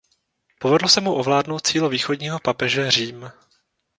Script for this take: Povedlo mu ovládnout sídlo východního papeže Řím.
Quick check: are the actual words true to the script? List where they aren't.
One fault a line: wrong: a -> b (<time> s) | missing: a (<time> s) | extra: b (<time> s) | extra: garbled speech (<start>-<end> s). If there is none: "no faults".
extra: se (0.9 s)